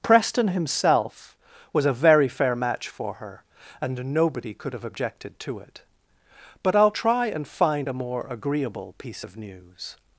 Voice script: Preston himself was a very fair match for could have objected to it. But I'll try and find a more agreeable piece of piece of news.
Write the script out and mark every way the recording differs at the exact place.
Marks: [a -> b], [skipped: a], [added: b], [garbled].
Preston himself was a very fair match for [added: her and nobody] could have objected to it. But I'll try and find a more agreeable piece of [skipped: piece of] news.